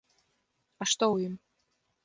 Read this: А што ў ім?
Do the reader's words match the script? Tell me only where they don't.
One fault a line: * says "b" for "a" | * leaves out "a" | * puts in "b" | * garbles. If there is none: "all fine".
all fine